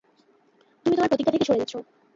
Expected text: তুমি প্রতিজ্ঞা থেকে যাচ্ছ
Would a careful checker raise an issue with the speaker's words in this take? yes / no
yes